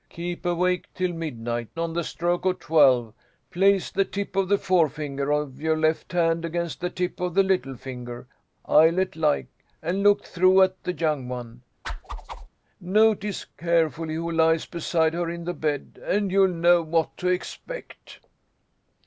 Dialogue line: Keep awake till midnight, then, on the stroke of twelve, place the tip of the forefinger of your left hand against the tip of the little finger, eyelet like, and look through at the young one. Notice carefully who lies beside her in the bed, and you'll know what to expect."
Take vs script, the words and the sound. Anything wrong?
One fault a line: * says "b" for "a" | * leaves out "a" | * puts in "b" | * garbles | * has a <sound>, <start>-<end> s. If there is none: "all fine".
* leaves out "then"
* has a whoosh, 11.8-12.5 s